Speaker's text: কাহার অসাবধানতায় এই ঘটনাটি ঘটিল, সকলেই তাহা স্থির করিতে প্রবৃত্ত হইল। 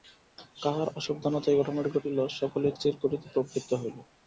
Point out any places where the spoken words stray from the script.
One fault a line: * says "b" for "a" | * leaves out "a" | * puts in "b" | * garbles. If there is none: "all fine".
* leaves out "তাহা"